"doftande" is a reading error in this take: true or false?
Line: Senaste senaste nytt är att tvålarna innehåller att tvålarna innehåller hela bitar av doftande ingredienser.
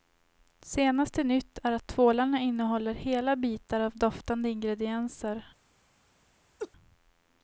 false